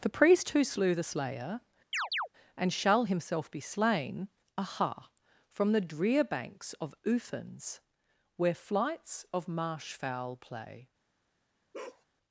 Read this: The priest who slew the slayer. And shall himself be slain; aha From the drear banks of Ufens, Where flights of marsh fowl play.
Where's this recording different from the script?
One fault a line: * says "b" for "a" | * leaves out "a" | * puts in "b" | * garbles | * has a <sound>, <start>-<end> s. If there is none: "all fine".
* has a chirp, 1.9-2.3 s
* has a bark, 11.7-12.1 s